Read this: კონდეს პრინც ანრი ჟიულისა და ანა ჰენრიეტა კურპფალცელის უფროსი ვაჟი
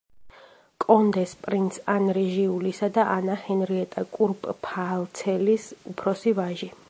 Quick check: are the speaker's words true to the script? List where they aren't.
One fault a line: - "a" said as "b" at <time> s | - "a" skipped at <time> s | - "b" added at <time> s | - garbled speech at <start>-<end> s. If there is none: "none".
none